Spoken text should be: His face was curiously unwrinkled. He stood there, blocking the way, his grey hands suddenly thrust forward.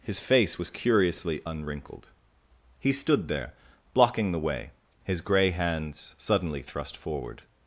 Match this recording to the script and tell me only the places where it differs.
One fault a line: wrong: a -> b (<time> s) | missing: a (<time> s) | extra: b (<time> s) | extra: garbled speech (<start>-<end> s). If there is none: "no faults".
no faults